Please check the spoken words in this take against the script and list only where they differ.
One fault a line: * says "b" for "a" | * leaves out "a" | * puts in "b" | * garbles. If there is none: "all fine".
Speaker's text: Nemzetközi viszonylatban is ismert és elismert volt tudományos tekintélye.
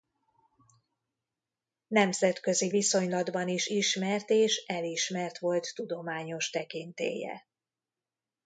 all fine